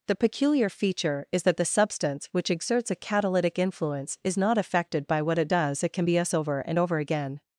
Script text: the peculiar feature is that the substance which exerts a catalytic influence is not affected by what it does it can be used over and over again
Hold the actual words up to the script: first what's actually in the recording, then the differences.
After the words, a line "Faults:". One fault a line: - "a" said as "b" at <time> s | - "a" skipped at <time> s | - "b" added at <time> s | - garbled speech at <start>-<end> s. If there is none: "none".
the peculiar feature is that the substance which exerts a catalytic influence is not affected by what it does it can be us over and over again
Faults:
- "used" said as "us" at 6.2 s